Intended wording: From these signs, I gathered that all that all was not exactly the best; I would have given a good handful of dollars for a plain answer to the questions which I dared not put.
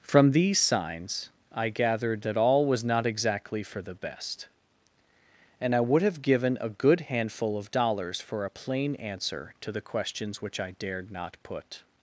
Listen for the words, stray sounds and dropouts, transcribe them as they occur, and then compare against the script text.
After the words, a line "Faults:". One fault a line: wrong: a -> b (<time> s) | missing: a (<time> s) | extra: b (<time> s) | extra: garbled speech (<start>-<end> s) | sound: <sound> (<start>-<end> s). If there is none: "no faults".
From these signs, I gathered that all was not exactly for the best; and I would have given a good handful of dollars for a plain answer to the questions which I dared not put.
Faults:
missing: that all (2.6 s)
extra: for (3.6 s)
extra: and (5.6 s)